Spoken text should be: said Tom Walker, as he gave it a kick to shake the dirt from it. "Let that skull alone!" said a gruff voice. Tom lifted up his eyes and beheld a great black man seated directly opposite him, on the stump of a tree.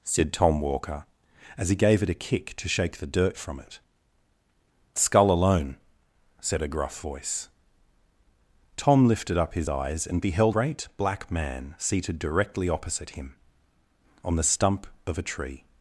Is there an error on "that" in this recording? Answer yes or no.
yes